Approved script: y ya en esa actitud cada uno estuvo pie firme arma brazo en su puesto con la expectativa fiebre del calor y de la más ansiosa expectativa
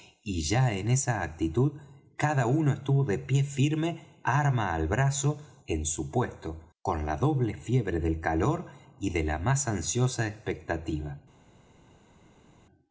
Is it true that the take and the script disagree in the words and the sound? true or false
true